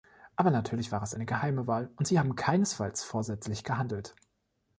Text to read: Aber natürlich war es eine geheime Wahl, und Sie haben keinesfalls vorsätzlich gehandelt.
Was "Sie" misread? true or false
false